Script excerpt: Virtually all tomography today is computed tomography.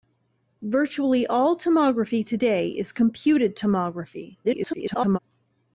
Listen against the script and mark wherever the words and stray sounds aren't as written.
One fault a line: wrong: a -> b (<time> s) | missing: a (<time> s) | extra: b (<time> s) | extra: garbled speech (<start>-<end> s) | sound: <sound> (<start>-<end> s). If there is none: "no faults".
extra: garbled speech (4.4-5.2 s)